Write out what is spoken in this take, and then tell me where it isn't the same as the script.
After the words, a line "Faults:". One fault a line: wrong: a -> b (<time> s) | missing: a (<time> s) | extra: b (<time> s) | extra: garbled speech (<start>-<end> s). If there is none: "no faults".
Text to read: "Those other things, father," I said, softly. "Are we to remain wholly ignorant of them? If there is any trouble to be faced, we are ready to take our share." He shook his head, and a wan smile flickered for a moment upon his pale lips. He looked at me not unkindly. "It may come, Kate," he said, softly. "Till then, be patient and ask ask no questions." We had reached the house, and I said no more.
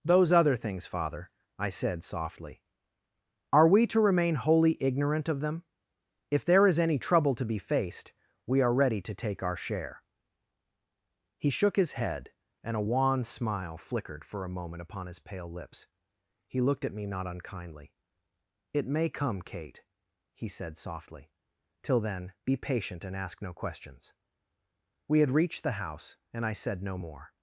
"Those other things, father," I said, softly. "Are we to remain wholly ignorant of them? If there is any trouble to be faced, we are ready to take our share." He shook his head, and a wan smile flickered for a moment upon his pale lips. He looked at me not unkindly. "It may come, Kate," he said, softly. "Till then, be patient and ask no questions." We had reached the house, and I said no more.
Faults:
missing: ask (23.4 s)